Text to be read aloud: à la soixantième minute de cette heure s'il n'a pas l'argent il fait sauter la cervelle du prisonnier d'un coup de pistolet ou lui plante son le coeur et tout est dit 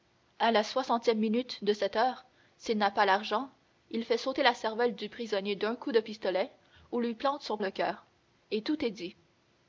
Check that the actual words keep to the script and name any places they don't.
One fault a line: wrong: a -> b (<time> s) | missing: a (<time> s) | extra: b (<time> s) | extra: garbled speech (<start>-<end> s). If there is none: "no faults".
no faults